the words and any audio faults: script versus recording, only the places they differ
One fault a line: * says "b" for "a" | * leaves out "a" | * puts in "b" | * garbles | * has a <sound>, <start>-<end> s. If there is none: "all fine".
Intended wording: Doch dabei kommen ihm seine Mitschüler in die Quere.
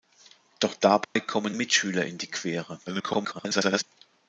* has a dropout, 1.0-1.2 s
* leaves out "ihm seine"
* garbles